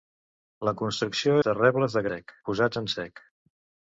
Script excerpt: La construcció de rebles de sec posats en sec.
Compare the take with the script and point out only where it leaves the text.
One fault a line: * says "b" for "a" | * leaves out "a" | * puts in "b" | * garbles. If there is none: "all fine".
all fine